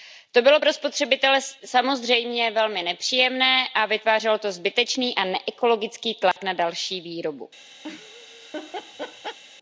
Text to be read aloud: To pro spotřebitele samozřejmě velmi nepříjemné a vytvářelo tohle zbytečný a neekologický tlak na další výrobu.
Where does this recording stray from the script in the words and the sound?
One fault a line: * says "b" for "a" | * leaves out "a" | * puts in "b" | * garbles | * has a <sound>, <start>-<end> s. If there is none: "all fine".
* puts in "bylo"
* says "to" for "tohle"
* has a dropout, 6.3-6.4 s
* has a laugh, 7.8-9.4 s